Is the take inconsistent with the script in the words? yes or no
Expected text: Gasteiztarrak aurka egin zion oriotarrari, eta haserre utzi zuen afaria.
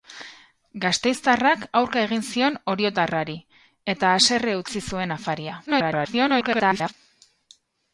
yes